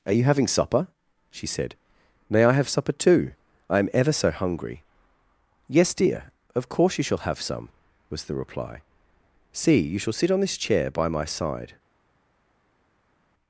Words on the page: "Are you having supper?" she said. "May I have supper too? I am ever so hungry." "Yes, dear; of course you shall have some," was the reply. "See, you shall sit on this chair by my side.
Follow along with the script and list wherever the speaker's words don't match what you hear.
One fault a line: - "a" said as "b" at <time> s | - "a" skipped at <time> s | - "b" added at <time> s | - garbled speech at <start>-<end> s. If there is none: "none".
none